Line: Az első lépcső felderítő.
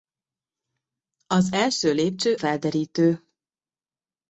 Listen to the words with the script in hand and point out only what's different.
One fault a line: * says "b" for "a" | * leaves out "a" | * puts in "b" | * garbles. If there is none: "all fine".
all fine